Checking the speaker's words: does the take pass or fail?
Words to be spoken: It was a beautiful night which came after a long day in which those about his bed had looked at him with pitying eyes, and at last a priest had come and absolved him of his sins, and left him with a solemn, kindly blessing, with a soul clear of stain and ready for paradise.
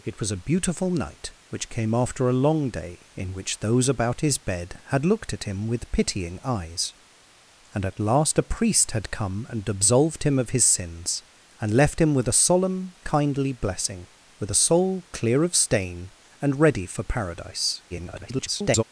fail